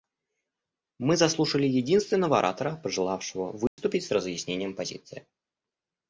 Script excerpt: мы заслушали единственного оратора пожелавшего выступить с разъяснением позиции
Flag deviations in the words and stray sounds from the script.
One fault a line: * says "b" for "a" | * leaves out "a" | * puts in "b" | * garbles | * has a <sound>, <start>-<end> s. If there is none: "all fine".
* has a dropout, 3.7-3.8 s